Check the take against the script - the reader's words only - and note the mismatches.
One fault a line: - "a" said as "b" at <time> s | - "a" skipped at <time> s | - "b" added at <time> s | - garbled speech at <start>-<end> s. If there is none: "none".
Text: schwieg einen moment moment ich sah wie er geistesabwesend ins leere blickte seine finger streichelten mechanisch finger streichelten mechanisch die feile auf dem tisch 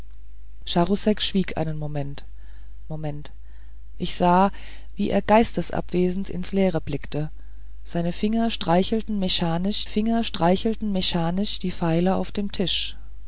none